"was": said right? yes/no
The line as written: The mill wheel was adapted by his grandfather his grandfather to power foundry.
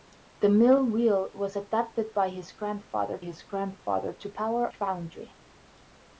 yes